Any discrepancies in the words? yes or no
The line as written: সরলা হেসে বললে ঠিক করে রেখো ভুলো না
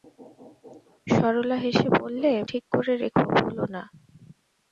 no